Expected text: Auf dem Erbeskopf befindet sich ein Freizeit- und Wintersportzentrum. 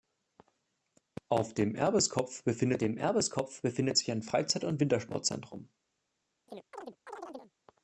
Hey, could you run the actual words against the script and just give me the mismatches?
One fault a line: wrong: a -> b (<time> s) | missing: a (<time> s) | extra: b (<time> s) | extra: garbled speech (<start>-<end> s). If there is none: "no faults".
extra: dem Erbeskopf befindet (2.8 s)